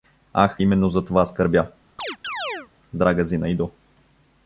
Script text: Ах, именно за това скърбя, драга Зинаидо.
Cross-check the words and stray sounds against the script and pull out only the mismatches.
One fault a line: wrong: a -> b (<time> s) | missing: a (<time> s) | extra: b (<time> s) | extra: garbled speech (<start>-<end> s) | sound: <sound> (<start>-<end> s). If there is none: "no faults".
sound: chirp (2.0-2.7 s)